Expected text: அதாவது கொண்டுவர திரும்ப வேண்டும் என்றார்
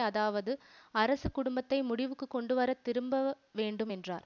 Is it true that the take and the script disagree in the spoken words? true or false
true